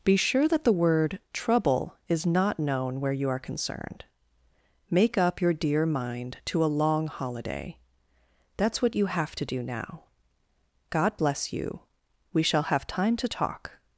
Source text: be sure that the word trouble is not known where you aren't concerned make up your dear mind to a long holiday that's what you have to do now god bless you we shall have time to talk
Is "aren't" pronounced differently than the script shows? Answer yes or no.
yes